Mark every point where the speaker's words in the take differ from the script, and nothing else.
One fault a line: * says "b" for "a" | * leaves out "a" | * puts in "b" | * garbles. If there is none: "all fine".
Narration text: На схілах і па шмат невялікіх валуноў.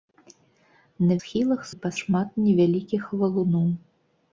all fine